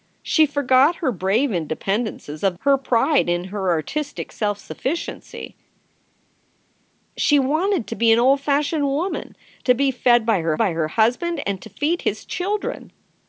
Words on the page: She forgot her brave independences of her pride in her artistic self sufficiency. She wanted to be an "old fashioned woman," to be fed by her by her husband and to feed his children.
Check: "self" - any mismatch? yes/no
no